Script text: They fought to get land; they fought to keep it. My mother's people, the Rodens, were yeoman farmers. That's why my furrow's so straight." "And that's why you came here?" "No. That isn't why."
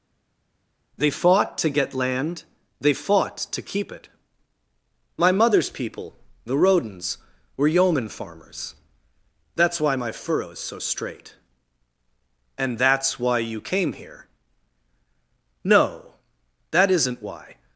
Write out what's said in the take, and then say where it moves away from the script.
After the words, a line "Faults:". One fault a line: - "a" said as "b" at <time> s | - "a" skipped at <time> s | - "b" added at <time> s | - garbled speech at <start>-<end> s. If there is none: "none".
They fought to get land; they fought to keep it. My mother's people, the Rodens, were yeoman farmers. That's why my furrow's so straight." "And that's why you came here?" "No. That isn't why."
Faults:
none